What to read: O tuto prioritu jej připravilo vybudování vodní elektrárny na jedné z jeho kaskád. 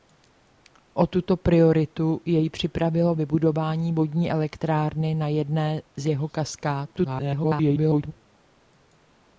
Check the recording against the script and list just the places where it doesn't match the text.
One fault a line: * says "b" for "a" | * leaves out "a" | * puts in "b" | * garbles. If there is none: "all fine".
* garbles